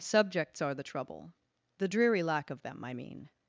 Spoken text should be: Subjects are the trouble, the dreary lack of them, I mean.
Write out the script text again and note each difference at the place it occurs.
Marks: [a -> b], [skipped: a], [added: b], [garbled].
Subjects are the trouble, the dreary lack of them, I mean.